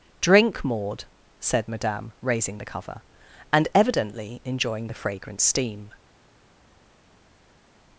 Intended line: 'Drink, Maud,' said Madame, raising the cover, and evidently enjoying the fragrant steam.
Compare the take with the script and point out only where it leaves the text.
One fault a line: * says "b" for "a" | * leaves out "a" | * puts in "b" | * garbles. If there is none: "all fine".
all fine